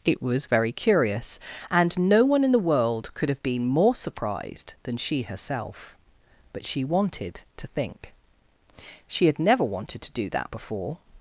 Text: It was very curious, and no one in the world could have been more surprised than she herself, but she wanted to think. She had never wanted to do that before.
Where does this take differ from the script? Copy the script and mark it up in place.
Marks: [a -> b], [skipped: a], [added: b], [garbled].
It was very curious, and no one in the world could have been more surprised than she herself, but she wanted to think. She had never wanted to do that before.